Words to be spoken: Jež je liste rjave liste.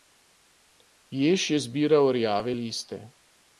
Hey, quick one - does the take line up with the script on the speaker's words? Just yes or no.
no